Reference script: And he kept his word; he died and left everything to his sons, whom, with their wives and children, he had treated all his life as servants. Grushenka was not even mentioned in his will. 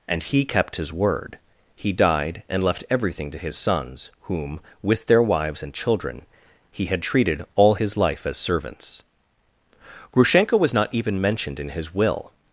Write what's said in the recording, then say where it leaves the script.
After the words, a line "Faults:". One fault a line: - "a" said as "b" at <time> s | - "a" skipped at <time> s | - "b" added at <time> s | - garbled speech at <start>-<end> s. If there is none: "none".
And he kept his word; he died and left everything to his sons, whom, with their wives and children, he had treated all his life as servants. Grushenka was not even mentioned in his will.
Faults:
none